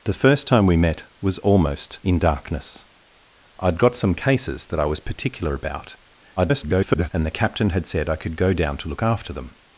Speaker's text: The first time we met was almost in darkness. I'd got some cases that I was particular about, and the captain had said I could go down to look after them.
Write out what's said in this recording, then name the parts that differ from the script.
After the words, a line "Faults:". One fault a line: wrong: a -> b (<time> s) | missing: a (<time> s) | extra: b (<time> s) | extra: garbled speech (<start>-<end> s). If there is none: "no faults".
The first time we met was almost in darkness. I'd got some cases that I was particular about, [garbled] and the captain had said I could go down to look after them.
Faults:
extra: garbled speech (6.4-7.1 s)